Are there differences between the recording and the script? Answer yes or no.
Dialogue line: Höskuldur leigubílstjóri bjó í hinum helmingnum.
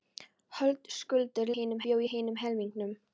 yes